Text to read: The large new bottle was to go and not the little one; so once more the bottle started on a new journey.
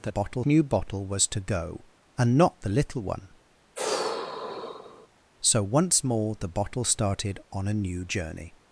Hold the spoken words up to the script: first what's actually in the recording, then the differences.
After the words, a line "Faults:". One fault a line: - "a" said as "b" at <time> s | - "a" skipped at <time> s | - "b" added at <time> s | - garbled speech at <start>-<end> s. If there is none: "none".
The bottle new bottle was to go and not the little one; so once more the bottle started on a new journey.
Faults:
- "large" said as "bottle" at 0.1 s